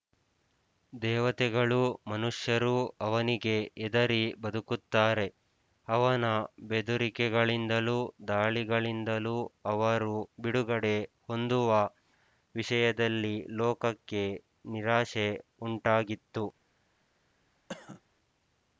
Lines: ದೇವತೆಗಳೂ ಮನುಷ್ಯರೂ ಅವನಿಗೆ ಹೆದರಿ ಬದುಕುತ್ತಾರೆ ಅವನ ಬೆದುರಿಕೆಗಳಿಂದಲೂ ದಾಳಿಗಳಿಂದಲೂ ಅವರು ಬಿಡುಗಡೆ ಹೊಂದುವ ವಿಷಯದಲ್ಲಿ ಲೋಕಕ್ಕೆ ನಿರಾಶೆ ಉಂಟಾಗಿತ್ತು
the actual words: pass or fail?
pass